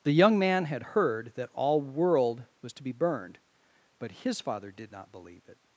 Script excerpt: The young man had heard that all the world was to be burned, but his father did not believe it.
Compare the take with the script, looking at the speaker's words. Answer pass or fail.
fail